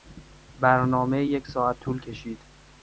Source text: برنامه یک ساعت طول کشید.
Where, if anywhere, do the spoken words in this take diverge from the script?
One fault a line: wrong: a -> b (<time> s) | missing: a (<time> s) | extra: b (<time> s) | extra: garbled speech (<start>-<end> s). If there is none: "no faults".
no faults